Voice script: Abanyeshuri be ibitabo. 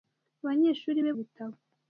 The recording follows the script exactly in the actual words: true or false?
true